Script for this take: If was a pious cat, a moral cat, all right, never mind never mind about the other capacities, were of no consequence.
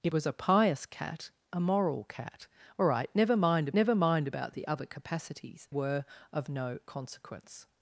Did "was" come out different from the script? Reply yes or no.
no